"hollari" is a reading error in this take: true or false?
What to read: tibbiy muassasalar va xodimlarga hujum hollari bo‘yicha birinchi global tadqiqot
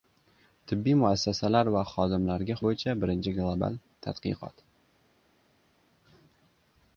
true